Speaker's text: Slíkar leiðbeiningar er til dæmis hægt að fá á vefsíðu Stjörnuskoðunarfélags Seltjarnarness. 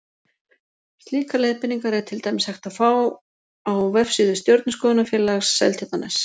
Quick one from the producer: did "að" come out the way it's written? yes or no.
yes